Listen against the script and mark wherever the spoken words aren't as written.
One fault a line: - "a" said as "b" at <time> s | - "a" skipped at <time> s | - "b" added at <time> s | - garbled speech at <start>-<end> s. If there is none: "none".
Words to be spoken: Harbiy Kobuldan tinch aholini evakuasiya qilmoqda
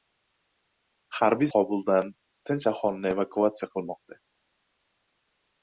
none